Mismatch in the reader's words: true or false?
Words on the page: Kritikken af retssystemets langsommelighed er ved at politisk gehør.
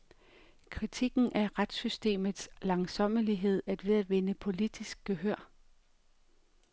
true